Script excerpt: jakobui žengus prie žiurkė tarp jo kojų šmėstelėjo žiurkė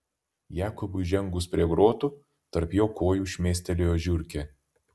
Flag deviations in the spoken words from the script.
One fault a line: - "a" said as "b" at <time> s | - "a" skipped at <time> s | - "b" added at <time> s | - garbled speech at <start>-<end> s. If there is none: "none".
- "žiurkė" said as "grotų" at 1.7 s